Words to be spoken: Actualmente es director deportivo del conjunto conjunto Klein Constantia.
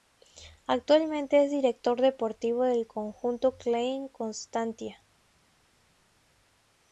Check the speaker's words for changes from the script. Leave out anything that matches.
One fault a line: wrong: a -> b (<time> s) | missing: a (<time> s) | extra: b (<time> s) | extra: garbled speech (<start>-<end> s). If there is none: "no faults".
missing: conjunto (3.5 s)